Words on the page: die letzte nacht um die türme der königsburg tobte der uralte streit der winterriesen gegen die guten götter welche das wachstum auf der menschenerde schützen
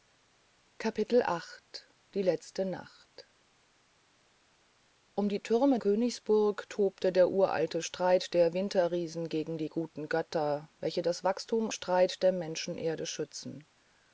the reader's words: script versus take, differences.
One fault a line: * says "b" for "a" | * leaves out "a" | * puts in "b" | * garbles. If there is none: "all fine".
* leaves out "der"
* says "streit" for "auf"